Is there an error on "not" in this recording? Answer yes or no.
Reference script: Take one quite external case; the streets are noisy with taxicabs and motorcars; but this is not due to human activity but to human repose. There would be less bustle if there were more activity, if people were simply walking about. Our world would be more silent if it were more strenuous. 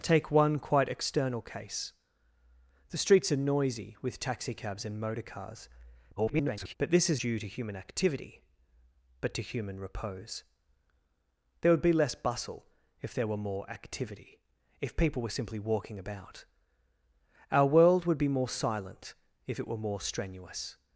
yes